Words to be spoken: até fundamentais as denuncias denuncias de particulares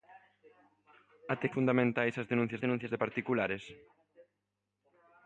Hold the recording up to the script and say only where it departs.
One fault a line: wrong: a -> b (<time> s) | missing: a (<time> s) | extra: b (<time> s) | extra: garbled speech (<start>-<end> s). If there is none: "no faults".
no faults